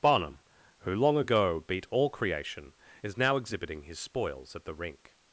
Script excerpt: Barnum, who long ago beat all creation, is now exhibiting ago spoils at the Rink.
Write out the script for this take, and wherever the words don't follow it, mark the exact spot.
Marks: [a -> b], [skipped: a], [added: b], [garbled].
Barnum, who long ago beat all creation, is now exhibiting [ago -> his] spoils at the Rink.